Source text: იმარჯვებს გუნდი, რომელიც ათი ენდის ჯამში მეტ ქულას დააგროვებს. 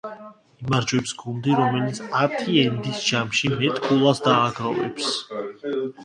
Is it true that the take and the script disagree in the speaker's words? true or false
false